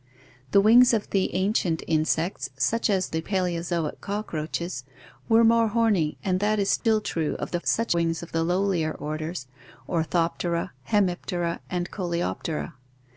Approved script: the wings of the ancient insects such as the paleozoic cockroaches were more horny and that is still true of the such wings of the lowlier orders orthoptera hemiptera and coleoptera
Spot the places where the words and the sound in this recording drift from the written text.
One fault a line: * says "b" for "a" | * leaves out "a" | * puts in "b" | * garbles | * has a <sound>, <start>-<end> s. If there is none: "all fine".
* has a dropout, 6.8-6.9 s